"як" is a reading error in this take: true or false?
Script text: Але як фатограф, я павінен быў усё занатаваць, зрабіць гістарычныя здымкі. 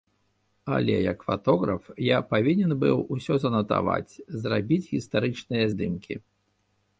false